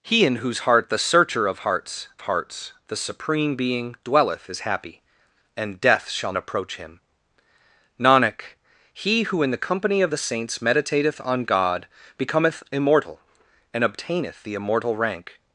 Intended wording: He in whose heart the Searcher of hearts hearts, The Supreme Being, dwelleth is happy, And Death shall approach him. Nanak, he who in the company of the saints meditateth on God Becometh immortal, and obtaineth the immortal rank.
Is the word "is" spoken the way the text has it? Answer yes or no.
yes